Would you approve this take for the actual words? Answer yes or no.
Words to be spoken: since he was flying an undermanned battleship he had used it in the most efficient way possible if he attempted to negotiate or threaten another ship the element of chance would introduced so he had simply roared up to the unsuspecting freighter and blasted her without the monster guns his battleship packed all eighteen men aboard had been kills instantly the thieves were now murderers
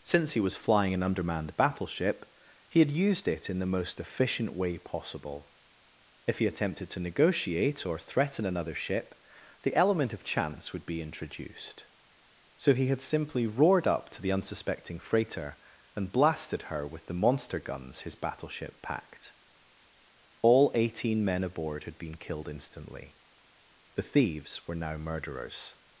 no